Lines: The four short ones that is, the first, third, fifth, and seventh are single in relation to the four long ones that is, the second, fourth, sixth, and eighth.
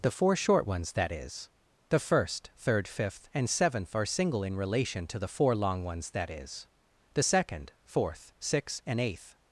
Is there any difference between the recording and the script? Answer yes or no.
no